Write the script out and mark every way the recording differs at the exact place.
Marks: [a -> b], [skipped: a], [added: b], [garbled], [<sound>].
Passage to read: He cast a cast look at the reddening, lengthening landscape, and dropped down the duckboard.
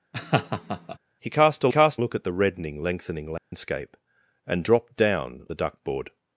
[laugh] He cast a cast look at the reddening, lengthening landscape, [dropout] and dropped down the duckboard.